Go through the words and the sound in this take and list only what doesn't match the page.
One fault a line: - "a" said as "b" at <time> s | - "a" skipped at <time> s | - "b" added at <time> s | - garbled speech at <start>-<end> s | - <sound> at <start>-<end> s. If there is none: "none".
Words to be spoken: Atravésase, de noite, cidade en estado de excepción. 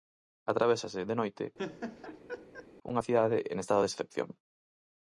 - laugh at 1.6-2.7 s
- "unha" added at 2.9 s